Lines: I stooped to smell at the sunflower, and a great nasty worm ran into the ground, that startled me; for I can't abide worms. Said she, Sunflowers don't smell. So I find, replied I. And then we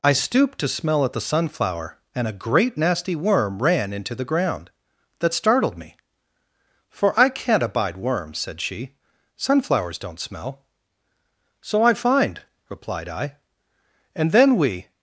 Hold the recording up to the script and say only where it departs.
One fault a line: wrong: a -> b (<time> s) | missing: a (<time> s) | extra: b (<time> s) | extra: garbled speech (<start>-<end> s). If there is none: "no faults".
no faults